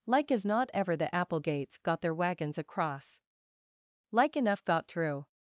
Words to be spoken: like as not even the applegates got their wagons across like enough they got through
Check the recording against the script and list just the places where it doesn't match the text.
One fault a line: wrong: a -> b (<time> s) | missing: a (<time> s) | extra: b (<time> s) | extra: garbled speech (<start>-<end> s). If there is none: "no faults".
wrong: even -> ever (0.7 s)
missing: they (4.7 s)